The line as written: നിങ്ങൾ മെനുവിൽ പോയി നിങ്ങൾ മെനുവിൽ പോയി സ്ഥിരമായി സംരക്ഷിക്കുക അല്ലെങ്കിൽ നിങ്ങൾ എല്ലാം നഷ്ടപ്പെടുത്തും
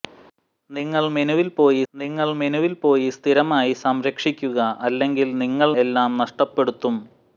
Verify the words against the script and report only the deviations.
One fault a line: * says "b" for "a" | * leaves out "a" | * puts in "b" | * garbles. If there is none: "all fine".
all fine